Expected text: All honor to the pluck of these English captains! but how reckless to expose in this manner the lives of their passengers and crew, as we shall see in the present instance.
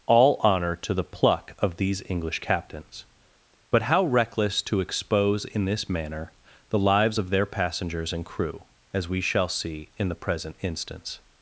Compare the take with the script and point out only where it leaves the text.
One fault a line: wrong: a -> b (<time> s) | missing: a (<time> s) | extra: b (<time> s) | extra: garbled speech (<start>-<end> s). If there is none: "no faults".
no faults